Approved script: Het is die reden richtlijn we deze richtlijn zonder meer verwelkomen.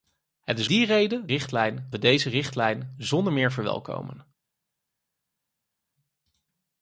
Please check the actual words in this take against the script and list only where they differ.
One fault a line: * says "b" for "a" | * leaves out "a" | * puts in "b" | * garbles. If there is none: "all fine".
all fine